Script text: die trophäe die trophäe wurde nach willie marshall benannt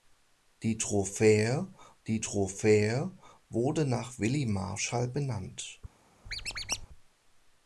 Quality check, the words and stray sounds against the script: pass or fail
fail